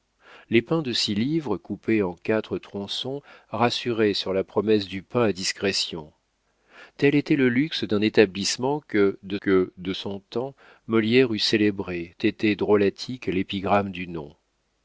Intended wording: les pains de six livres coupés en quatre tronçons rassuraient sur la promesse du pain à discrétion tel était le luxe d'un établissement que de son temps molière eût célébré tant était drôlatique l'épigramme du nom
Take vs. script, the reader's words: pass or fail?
fail